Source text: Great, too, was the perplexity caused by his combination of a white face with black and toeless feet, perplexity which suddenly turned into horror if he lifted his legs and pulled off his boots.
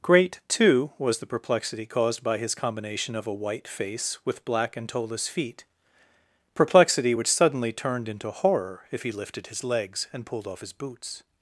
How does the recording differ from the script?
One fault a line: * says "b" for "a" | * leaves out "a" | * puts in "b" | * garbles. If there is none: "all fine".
all fine